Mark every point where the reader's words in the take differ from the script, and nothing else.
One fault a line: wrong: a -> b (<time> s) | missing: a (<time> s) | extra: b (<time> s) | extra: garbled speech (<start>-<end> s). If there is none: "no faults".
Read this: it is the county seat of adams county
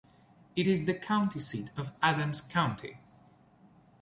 no faults